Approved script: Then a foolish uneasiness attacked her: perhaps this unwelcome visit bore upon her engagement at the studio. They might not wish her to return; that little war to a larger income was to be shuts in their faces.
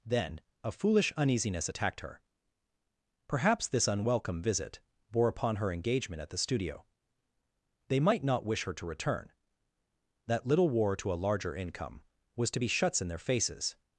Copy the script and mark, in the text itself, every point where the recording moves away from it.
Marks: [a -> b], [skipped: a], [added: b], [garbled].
Then a foolish uneasiness attacked her: perhaps this unwelcome visit bore upon her engagement at the studio. They might not wish her to return; that little war to a larger income was to be shuts in their faces.